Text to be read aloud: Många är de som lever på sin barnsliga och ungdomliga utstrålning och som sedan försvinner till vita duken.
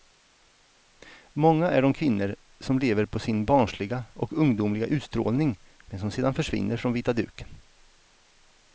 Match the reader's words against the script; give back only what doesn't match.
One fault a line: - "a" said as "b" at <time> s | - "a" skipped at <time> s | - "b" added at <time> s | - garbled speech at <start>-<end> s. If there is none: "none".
- "kvinnor" added at 1.9 s
- "och" said as "men" at 5.8 s
- "till" said as "från" at 6.8 s